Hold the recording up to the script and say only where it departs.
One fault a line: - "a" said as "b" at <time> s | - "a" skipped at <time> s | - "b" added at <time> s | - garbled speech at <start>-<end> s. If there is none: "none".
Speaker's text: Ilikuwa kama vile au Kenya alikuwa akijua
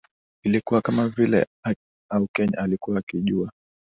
none